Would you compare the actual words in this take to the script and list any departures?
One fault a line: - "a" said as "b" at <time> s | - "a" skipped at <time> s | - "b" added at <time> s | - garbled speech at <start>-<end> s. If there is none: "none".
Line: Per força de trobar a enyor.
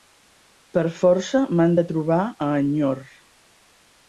- "m'han" added at 1.6 s